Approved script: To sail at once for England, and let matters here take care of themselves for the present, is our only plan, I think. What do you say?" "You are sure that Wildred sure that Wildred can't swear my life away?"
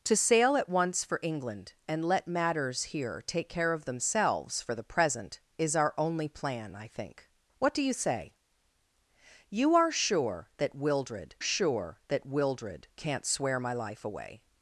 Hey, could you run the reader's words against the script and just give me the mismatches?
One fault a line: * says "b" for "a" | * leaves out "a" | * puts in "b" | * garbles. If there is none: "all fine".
all fine